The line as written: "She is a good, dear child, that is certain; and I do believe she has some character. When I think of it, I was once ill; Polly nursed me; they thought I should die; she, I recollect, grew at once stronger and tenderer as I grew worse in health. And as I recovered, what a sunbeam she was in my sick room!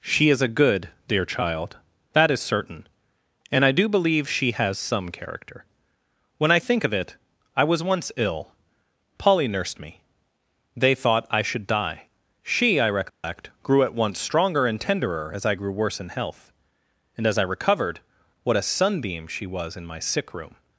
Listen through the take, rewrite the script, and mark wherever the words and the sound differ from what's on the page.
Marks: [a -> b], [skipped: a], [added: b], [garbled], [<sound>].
"She is a good, dear child, that is certain; and I do believe she has some character. When I think of it, I was once ill; Polly nursed me; they thought I should die; she, I recollect, [dropout] grew at once stronger and tenderer as I grew worse in health. And as I recovered, what a sunbeam she was in my sick room!